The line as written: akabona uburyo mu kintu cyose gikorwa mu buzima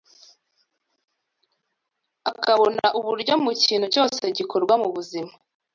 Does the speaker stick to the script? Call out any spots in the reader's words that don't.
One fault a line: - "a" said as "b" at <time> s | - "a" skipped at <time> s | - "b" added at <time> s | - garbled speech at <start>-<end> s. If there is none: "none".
none